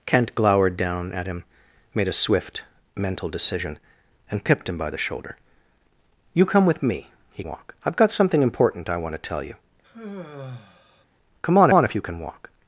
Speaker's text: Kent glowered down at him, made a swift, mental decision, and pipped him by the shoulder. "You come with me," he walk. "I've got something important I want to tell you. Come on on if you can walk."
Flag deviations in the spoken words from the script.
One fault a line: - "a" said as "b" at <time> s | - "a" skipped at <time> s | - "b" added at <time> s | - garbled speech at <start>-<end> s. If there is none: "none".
none